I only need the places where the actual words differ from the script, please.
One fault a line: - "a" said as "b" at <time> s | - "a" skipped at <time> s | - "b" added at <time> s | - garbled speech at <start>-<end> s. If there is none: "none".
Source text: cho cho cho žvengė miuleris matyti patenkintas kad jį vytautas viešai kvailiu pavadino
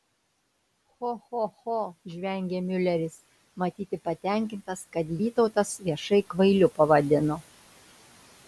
- "jį" skipped at 5.1 s